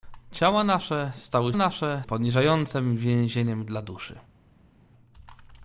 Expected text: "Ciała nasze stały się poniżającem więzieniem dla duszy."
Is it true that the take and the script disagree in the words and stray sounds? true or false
true